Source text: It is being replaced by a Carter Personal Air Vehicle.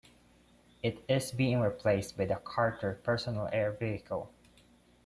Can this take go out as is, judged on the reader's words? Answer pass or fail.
fail